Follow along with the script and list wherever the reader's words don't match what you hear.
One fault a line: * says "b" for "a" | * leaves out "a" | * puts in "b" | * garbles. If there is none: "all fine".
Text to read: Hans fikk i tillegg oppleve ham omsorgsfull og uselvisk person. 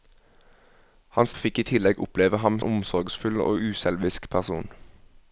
all fine